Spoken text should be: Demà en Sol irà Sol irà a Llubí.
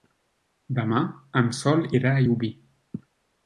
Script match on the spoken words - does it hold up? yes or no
no